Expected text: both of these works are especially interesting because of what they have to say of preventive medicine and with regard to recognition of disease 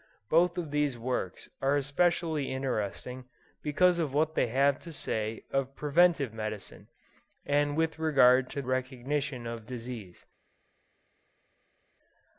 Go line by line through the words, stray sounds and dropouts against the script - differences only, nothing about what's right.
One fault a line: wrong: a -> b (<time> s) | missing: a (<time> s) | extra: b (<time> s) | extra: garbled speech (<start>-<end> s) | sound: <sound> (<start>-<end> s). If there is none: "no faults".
no faults